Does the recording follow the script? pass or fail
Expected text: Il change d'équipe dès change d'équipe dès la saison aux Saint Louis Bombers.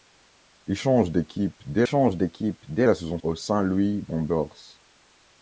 pass